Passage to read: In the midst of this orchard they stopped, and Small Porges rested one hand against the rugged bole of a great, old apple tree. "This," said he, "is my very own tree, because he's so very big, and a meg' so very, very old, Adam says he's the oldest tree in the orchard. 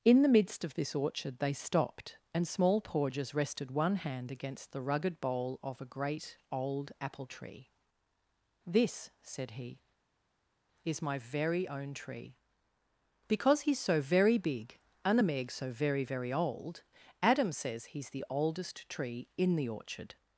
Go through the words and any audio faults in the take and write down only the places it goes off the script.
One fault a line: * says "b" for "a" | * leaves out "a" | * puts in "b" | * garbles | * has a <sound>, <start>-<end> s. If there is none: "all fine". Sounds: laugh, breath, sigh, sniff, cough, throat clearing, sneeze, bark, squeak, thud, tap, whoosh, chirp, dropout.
all fine